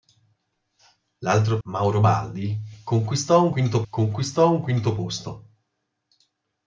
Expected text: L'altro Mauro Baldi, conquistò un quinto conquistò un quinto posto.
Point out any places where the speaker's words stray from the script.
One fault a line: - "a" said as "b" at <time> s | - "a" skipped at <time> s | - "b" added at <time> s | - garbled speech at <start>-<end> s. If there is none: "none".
none